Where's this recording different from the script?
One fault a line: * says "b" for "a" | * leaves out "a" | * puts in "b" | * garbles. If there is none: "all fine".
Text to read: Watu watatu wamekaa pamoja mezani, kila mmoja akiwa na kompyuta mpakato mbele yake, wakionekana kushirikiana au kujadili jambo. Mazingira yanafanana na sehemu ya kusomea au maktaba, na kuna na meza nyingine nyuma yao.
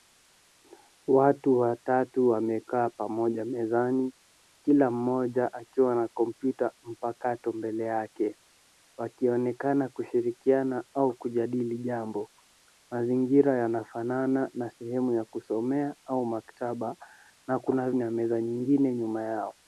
all fine